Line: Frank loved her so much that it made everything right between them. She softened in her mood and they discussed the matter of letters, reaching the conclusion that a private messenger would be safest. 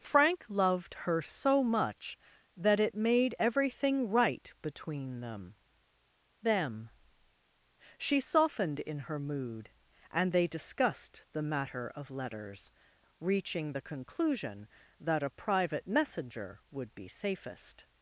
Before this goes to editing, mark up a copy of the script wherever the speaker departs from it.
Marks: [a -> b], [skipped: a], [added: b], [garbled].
Frank loved her so much that it made everything right between them. [added: them] She softened in her mood and they discussed the matter of letters, reaching the conclusion that a private messenger would be safest.